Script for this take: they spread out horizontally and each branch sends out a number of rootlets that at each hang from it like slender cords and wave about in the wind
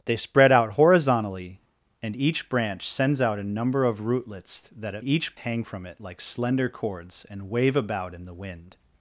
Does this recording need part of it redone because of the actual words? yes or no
no